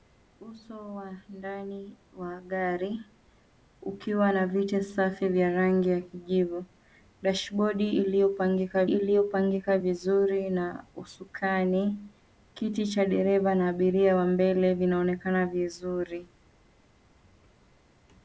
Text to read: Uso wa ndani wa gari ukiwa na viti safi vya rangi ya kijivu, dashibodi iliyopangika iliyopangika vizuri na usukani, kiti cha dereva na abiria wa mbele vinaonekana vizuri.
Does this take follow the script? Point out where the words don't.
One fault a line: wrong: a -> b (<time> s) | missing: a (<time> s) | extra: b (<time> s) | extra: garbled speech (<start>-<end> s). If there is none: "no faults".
no faults